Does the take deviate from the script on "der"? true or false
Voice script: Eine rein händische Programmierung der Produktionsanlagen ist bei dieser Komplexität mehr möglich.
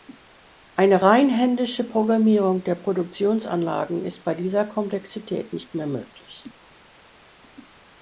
false